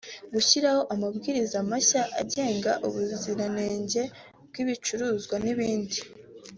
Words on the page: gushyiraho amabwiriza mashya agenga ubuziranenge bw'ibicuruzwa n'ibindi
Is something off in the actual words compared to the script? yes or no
no